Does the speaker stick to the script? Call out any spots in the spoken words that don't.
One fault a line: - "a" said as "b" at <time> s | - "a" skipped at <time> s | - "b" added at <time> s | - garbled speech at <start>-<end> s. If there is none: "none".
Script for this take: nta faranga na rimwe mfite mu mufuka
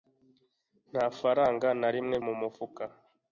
- "mfite" skipped at 2.1 s